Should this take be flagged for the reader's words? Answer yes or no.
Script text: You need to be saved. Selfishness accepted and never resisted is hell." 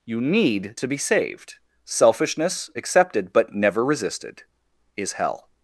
yes